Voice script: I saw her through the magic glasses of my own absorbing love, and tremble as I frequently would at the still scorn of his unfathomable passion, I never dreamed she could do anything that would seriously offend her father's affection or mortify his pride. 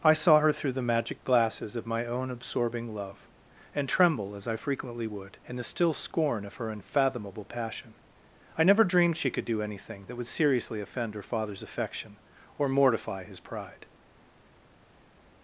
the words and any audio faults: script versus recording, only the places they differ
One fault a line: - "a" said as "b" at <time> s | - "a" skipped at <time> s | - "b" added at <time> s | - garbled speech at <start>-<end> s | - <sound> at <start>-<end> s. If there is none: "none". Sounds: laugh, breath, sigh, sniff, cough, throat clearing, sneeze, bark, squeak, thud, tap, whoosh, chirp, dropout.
- "at" said as "in" at 5.4 s
- "his" said as "her" at 6.6 s